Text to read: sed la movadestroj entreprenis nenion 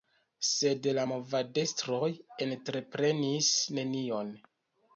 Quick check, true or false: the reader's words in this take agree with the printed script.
true